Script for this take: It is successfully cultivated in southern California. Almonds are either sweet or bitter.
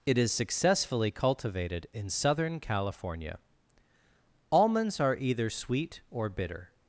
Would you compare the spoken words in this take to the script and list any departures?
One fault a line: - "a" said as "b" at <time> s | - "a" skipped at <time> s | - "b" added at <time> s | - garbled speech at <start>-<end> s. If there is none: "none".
none